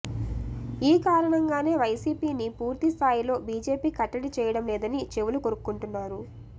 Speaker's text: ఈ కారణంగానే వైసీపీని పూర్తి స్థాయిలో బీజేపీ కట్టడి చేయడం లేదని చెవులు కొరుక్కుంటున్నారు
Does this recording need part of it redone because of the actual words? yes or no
no